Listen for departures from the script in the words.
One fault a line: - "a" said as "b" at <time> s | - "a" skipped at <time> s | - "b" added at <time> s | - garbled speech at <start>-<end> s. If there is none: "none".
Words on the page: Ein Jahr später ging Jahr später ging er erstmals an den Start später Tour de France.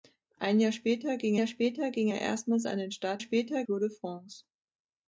none